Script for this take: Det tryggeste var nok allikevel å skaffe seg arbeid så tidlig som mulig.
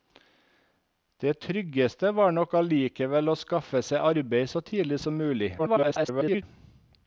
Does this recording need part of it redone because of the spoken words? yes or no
yes